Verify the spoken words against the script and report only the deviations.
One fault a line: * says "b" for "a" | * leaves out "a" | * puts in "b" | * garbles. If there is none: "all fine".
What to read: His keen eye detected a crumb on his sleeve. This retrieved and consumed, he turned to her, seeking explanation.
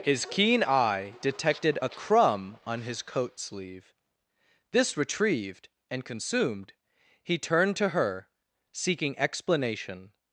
* puts in "coat"